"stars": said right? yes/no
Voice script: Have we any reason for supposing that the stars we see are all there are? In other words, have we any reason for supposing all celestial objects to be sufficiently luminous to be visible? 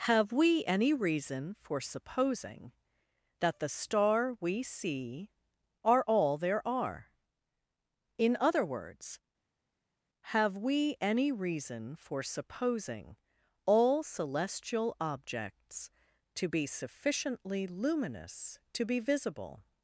no